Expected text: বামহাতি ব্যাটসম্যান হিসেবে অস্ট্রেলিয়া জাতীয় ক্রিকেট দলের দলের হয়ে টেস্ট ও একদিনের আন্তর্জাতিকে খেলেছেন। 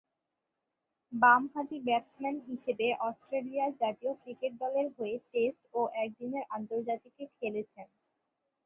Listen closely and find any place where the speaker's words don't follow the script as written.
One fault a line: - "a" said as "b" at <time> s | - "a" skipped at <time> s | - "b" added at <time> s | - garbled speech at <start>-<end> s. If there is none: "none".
- "দলের" skipped at 4.9 s